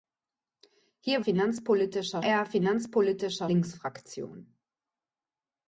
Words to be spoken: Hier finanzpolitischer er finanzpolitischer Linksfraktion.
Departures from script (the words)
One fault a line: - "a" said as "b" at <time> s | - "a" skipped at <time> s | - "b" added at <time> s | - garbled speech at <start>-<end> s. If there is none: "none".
none